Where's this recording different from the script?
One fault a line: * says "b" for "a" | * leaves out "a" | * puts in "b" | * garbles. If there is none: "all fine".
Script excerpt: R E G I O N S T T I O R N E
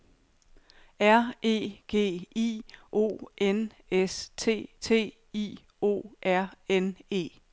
all fine